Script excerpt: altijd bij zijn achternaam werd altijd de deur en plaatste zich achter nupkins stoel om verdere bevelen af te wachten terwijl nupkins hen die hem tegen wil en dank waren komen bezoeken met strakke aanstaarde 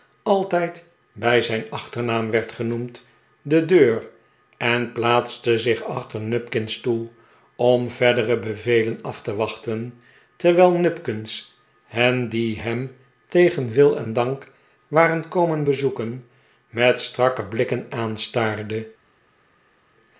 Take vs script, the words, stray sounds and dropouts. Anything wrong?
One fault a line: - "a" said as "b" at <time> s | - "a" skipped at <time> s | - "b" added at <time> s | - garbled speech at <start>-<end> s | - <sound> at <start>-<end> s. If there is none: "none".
- "altijd" said as "genoemd" at 2.5 s
- "blikken" added at 17.4 s